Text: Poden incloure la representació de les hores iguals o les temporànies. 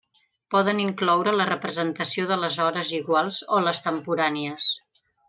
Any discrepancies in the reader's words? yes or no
no